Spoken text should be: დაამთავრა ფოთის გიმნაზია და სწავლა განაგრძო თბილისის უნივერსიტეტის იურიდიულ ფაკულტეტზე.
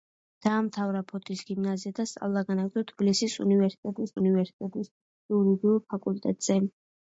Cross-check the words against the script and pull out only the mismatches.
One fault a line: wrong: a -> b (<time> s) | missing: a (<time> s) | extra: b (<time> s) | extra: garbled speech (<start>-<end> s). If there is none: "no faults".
extra: უნივერსიტეტის (4.2 s)